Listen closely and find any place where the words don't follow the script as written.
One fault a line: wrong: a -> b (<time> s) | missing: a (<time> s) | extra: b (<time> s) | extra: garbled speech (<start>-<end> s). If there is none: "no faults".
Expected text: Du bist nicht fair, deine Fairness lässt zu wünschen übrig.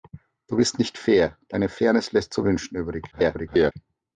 extra: garbled speech (3.1-3.7 s)